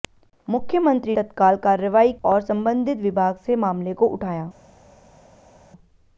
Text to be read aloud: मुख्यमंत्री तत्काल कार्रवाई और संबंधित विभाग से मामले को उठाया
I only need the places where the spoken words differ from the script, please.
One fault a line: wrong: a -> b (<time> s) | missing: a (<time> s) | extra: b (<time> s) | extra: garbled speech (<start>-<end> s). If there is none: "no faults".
no faults